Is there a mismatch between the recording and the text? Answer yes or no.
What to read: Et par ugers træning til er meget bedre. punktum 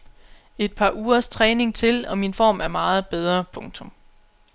yes